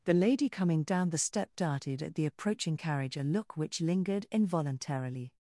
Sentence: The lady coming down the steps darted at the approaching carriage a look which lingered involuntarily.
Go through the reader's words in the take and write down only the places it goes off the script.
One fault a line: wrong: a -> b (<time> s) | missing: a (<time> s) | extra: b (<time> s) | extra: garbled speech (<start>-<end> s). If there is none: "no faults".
wrong: steps -> step (1.2 s)